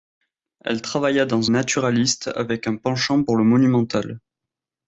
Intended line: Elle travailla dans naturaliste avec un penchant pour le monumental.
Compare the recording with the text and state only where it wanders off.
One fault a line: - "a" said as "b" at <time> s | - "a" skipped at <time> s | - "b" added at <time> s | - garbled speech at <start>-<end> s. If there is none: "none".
none